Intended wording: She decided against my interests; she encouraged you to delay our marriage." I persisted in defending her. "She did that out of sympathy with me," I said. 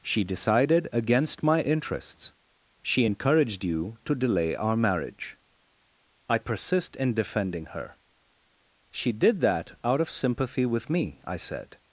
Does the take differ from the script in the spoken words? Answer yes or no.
yes